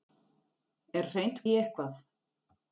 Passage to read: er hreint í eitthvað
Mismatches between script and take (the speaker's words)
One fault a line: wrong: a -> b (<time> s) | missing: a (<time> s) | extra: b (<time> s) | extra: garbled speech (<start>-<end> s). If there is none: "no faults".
no faults